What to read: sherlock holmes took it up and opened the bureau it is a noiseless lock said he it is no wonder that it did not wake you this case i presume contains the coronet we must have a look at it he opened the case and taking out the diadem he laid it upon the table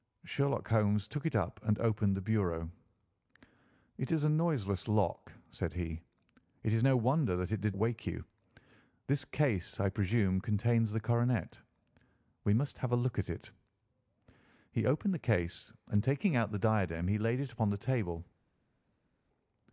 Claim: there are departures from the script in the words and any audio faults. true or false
true